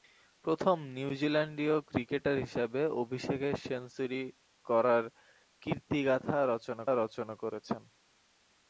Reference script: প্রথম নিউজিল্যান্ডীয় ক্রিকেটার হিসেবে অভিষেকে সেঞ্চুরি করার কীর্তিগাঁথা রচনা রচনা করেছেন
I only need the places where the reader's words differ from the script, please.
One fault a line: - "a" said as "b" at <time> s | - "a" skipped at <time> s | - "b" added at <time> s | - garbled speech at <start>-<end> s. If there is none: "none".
none